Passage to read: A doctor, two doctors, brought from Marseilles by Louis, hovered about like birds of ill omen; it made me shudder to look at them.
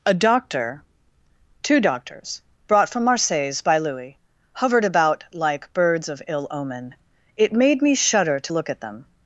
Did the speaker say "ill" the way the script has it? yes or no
yes